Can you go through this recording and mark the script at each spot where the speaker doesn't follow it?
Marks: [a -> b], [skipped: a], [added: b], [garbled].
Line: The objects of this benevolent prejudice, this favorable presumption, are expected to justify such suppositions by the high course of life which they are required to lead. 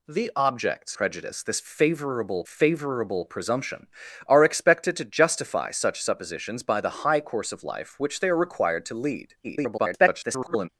The objects [of -> prejudice] this [benevolent prejudice, this -> favorable] favorable presumption, are expected to justify such suppositions by the high course of life which they are required to lead. [garbled]